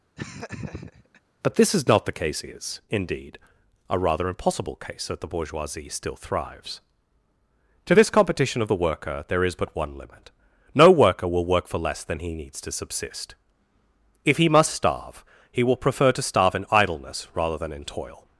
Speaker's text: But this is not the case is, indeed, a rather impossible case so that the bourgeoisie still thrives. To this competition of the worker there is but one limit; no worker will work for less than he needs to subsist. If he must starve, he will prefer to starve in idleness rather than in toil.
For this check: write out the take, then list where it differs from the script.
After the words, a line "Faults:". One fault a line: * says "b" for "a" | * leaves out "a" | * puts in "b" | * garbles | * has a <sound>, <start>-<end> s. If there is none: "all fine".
But this is not the case is, indeed, a rather impossible case that the bourgeoisie still thrives. To this competition of the worker there is but one limit; no worker will work for less than he needs to subsist. If he must starve, he will prefer to starve in idleness rather than in toil.
Faults:
* has a laugh, 0.2-1.2 s
* leaves out "so"